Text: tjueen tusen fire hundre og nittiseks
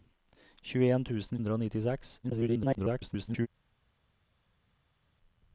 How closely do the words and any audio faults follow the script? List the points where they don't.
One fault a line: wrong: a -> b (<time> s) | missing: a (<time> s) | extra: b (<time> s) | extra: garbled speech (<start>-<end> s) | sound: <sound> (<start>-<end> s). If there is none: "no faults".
missing: fire (1.4 s)
extra: garbled speech (2.2-3.5 s)